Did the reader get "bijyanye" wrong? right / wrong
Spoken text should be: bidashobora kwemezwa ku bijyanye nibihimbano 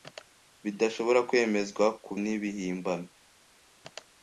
wrong